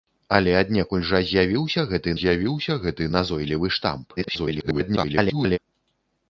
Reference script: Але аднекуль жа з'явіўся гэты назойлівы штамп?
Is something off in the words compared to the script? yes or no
yes